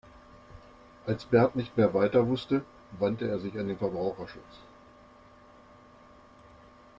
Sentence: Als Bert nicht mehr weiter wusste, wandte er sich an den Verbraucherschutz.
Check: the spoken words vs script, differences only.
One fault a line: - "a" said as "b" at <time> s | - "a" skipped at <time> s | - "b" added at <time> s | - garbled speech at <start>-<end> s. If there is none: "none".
none